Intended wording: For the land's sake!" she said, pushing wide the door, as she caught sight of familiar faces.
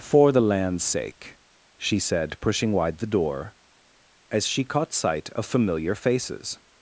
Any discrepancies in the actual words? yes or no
no